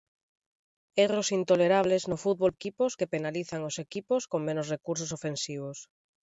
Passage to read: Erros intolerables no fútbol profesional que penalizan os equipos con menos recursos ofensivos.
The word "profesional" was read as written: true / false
false